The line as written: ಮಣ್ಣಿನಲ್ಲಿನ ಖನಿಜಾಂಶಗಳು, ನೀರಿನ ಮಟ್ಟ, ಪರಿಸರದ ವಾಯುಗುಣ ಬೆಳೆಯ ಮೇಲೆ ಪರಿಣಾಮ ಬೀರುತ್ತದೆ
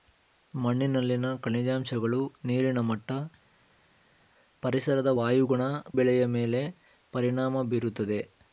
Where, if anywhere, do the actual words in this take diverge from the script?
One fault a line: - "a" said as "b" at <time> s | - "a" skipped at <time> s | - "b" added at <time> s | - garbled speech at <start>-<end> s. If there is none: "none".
none